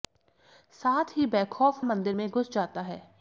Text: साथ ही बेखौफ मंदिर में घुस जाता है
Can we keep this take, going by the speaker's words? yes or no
yes